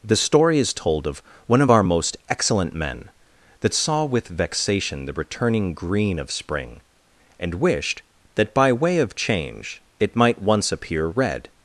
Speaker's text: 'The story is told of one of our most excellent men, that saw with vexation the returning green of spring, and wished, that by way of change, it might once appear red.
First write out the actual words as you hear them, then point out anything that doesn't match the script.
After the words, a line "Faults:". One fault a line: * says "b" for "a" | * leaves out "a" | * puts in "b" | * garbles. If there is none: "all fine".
'The story is told of one of our most excellent men, that saw with vexation the returning green of spring, and wished, that by way of change, it might once appear red.
Faults:
all fine